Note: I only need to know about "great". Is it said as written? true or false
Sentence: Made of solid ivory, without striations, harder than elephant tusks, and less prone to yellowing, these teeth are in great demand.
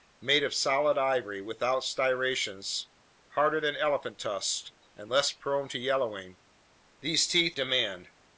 false